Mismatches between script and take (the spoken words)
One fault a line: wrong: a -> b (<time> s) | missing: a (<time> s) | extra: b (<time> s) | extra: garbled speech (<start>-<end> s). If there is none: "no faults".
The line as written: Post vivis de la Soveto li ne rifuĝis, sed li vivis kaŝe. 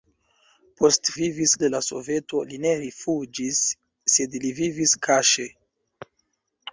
no faults